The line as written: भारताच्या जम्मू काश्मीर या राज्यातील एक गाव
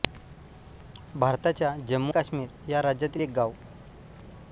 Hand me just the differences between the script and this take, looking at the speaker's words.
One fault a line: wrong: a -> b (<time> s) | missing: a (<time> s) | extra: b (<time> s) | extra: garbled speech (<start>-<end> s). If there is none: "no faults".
no faults